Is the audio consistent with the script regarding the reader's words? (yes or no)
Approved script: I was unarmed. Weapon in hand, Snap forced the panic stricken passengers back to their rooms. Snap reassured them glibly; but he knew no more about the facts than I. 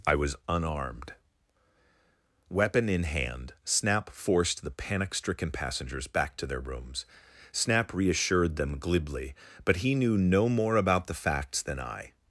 yes